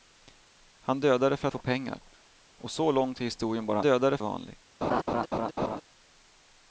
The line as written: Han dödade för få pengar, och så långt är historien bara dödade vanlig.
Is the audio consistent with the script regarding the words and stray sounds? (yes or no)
no